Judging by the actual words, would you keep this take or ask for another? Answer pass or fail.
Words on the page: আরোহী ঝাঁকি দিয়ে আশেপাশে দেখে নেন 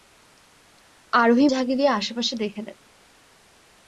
pass